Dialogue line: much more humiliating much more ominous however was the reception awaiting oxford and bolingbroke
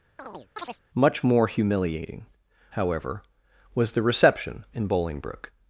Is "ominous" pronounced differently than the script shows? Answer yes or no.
yes